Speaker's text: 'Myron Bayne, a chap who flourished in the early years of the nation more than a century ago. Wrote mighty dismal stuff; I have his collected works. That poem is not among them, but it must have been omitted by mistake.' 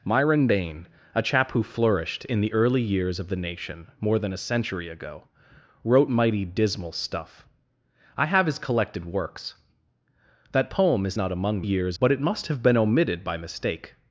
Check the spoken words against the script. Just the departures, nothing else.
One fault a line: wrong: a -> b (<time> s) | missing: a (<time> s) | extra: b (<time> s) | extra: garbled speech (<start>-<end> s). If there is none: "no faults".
wrong: them -> years (11.6 s)